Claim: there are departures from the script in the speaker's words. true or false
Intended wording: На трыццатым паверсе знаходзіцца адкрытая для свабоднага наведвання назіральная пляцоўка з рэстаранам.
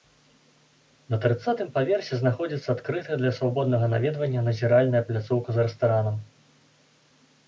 false